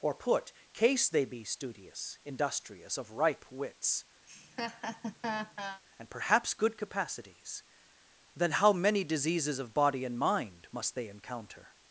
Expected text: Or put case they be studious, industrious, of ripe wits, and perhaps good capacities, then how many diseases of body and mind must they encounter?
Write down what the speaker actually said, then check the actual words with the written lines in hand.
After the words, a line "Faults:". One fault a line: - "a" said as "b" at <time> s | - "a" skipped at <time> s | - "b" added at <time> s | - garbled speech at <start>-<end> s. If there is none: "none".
Or put case they be studious, industrious, of ripe wits, and perhaps good capacities, then how many diseases of body and mind must they encounter?
Faults:
none